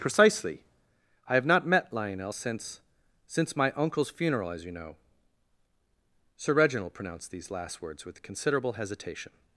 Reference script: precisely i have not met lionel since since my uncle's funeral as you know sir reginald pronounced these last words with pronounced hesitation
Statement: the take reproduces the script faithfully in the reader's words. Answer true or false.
false